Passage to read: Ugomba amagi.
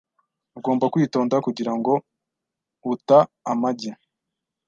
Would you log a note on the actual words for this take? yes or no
yes